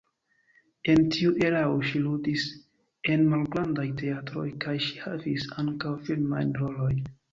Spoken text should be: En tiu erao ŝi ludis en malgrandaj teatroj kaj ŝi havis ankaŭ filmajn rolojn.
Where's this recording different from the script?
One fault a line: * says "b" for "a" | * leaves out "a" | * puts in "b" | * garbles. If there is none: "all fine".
all fine